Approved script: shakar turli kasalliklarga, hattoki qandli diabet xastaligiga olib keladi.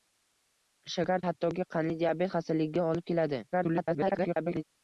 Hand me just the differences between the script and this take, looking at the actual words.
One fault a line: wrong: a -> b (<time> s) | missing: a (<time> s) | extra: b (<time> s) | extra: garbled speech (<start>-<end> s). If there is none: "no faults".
missing: turli kasalliklarga (1.2 s)
extra: garbled speech (3.5-4.6 s)